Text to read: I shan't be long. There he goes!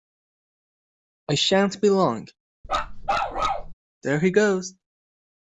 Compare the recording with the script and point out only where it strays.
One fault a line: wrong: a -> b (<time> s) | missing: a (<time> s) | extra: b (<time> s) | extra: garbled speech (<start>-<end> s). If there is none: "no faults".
no faults